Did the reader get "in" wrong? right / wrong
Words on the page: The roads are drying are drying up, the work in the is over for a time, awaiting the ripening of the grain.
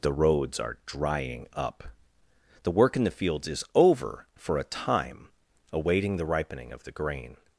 right